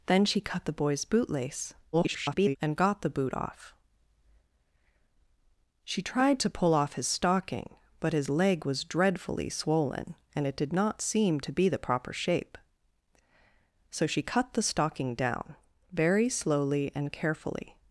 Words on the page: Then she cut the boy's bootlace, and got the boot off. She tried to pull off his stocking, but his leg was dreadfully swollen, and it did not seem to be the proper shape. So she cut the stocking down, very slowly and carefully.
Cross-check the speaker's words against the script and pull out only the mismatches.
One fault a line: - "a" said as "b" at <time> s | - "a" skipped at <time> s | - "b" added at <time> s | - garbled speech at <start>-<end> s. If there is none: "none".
- garbled speech at 1.9-2.6 s